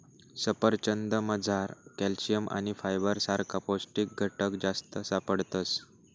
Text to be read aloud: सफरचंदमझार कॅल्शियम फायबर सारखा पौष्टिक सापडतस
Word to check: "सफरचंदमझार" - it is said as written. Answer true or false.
true